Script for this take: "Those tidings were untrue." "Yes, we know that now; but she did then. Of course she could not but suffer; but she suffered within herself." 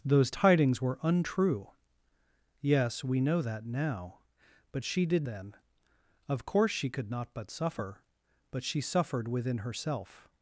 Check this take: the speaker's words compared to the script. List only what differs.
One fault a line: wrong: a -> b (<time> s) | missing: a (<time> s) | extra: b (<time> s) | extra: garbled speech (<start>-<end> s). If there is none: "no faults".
no faults